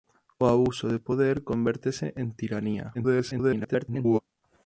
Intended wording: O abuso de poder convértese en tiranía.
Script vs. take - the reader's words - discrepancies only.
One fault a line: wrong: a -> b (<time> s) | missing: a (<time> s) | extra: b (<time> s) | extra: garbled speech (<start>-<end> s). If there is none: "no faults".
extra: garbled speech (2.9-4.2 s)